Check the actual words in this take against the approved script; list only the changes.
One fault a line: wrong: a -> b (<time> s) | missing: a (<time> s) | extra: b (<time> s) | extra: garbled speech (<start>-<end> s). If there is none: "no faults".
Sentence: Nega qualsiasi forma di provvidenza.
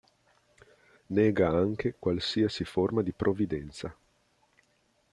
extra: anche (1.5 s)